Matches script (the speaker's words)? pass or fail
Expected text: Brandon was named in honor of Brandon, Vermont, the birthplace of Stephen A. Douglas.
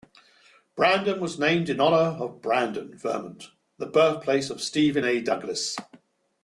pass